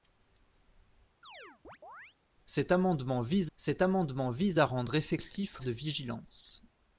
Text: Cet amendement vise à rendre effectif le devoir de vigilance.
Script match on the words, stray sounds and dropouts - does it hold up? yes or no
no